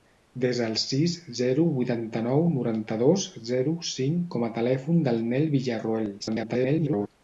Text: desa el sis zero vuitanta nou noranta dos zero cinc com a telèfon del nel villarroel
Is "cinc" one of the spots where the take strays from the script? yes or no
no